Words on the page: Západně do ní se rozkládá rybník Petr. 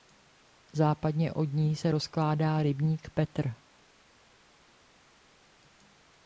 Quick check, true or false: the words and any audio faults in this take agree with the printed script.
false